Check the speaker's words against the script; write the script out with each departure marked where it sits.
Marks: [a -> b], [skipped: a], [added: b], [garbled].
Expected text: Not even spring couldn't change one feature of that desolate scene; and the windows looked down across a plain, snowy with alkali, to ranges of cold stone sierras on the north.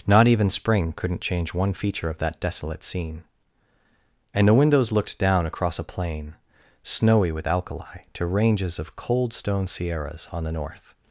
Not even spring couldn't change one feature of that desolate scene; and the windows looked down across a plain, snowy with alkali, to ranges of cold stone sierras on the north.